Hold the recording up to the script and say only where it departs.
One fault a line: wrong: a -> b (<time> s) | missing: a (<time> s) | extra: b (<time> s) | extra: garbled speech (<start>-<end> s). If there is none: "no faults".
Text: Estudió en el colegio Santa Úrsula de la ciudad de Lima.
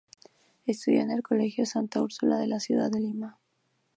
no faults